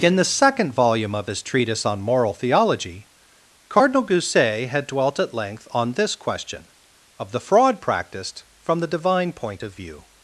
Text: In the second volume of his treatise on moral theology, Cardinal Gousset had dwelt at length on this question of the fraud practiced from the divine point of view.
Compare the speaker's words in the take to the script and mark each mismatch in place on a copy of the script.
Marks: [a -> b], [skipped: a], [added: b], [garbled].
In the second volume of his treatise on moral theology, Cardinal Gousset had dwelt at length on this question of the fraud practiced from the divine point of view.